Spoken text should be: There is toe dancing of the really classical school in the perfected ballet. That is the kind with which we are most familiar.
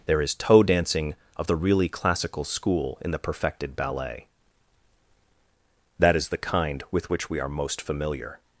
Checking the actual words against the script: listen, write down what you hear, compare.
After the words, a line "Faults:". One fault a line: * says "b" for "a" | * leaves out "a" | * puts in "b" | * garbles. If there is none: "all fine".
There is toe dancing of the really classical school in the perfected ballet. That is the kind with which we are most familiar.
Faults:
all fine